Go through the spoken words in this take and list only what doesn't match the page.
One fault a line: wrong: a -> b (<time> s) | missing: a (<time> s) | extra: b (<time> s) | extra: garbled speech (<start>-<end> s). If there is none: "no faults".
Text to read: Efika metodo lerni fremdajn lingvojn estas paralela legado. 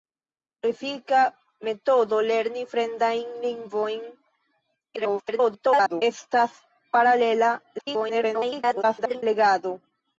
extra: garbled speech (5.0-6.0 s)
extra: garbled speech (7.8-9.2 s)